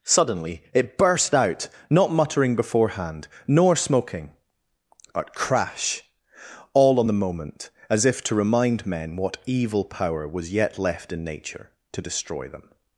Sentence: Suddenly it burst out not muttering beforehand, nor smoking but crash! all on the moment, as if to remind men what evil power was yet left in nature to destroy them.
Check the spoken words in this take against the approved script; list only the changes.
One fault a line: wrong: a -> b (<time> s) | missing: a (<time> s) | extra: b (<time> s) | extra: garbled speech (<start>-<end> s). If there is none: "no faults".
no faults